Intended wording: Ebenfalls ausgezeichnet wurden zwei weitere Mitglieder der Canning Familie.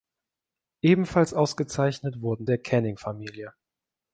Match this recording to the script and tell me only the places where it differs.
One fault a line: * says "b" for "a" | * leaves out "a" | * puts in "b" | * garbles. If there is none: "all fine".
* leaves out "zwei weitere Mitglieder"